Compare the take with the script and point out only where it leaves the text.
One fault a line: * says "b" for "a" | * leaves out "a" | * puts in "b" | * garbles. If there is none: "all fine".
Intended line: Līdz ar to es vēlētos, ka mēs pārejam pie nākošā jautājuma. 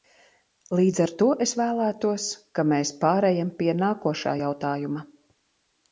all fine